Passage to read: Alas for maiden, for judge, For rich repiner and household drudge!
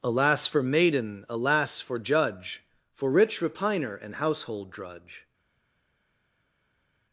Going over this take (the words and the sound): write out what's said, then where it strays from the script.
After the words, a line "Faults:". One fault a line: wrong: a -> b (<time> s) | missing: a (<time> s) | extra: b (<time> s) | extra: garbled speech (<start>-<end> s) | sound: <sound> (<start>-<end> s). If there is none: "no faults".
Alas for maiden, alas for judge, For rich repiner and household drudge!
Faults:
extra: alas (1.3 s)